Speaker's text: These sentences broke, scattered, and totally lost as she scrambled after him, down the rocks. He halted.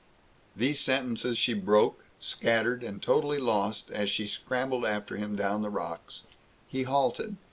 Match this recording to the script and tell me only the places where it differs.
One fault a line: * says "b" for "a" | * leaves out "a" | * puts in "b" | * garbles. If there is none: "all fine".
* puts in "she"